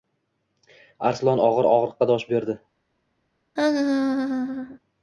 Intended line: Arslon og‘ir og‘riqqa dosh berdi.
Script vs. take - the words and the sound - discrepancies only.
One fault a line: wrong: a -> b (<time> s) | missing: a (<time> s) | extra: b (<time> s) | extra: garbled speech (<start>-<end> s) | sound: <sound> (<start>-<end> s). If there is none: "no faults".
sound: laugh (3.6-4.8 s)